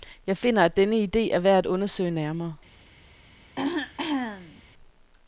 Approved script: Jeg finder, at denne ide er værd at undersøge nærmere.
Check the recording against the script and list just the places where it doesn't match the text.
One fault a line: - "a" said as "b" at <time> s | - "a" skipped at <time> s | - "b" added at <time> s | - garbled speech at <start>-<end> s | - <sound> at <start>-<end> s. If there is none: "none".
- throat clearing at 3.6-4.6 s